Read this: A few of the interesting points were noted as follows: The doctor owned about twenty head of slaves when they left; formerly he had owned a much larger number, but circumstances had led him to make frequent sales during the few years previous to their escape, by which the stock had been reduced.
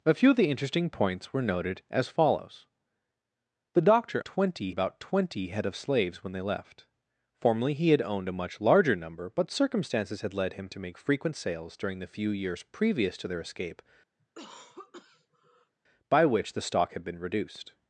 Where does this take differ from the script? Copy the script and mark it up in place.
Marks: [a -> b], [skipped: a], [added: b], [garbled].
A few of the interesting points were noted as follows: The doctor [owned -> twenty] about twenty head of slaves when they left; formerly he had owned a much larger number, but circumstances had led him to make frequent sales during the few years previous to their escape, by which the stock had been reduced.